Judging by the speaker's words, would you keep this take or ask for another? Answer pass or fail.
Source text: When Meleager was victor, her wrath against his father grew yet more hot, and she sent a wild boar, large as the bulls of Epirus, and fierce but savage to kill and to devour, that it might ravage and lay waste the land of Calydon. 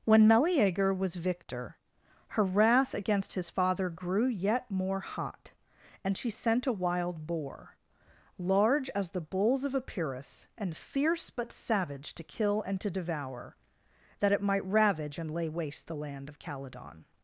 pass